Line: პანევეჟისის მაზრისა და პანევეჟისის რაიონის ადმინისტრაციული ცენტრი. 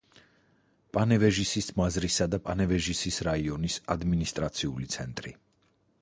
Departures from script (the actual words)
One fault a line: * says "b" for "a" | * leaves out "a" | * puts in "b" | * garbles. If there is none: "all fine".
all fine